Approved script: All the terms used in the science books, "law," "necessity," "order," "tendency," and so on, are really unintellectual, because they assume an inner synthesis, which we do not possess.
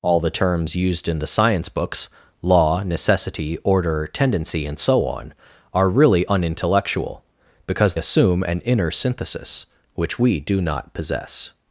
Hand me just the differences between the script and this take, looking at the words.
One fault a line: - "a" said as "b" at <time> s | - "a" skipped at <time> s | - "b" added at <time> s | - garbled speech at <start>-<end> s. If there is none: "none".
- "they" skipped at 8.0 s